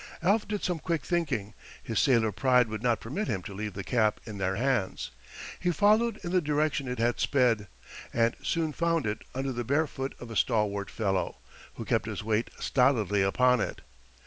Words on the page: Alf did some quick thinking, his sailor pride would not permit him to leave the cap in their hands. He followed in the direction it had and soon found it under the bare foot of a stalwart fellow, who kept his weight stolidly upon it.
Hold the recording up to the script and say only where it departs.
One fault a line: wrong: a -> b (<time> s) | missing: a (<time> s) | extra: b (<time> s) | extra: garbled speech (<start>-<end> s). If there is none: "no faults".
extra: sped (7.2 s)